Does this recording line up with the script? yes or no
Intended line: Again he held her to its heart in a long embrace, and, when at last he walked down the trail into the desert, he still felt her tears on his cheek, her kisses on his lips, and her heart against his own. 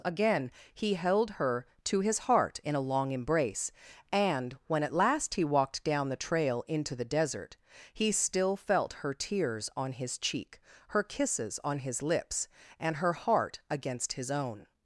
no